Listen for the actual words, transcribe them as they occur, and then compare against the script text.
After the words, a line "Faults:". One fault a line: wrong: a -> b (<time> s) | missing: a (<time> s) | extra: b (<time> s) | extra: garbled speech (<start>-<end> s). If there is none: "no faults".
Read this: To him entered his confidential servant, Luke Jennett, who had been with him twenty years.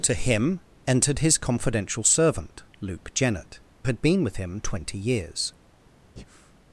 To him entered his confidential servant, Luke Jennett, had been with him twenty years.
Faults:
missing: who (3.6 s)